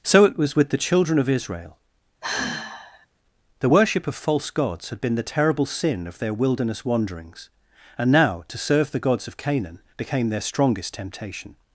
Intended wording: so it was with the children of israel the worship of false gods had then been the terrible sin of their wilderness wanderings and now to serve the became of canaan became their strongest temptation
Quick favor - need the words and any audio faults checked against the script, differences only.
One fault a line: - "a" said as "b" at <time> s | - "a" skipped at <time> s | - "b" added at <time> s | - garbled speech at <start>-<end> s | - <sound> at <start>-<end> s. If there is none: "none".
- sigh at 2.2-3.1 s
- "then" skipped at 5.0 s
- "became" said as "gods" at 9.0 s